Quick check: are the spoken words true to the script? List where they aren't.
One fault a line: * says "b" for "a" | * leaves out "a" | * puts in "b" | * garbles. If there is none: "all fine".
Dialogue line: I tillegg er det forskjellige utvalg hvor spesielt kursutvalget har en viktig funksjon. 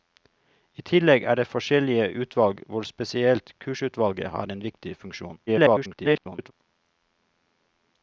* garbles